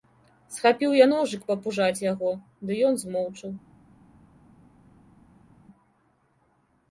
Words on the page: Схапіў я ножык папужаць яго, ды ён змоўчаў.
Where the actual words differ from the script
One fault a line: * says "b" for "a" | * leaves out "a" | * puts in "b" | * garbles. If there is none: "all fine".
all fine